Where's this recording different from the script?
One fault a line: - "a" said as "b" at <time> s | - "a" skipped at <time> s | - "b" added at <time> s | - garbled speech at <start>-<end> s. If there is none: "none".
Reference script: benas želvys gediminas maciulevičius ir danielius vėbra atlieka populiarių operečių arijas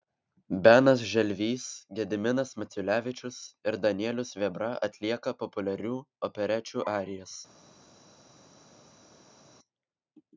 none